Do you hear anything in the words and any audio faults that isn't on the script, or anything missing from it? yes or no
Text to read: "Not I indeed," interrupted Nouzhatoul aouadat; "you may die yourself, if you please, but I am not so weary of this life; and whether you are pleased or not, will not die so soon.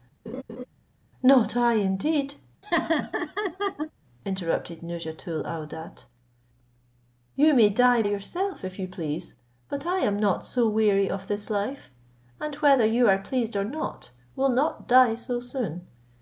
yes